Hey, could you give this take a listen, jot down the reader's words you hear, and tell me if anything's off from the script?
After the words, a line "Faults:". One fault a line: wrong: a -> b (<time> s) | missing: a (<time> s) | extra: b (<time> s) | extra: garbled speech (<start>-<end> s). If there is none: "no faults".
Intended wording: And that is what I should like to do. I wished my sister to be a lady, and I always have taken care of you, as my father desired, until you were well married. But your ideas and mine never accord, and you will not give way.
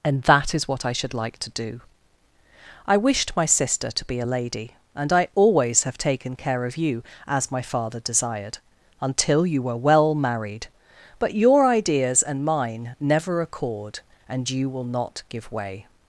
And that is what I should like to do. I wished my sister to be a lady, and I always have taken care of you, as my father desired, until you were well married. But your ideas and mine never accord, and you will not give way.
Faults:
no faults